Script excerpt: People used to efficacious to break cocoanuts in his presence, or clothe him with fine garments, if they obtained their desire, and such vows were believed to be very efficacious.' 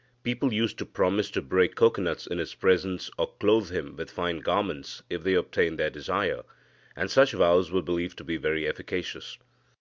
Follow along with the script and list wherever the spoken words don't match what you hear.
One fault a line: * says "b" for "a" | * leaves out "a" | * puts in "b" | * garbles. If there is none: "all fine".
* says "promise" for "efficacious"